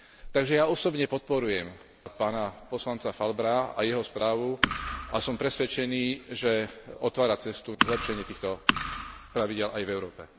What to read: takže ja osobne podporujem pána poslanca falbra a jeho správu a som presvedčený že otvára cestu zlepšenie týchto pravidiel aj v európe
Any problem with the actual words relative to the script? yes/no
no